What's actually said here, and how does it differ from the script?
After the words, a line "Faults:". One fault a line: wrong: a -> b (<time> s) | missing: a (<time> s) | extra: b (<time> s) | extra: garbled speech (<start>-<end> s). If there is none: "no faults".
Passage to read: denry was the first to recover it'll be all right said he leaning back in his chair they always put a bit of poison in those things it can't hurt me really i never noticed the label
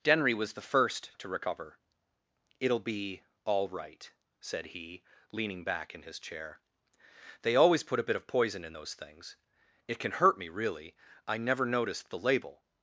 denry was the first to recover it'll be all right said he leaning back in his chair they always put a bit of poison in those things it can hurt me really i never noticed the label
Faults:
wrong: can't -> can (10.0 s)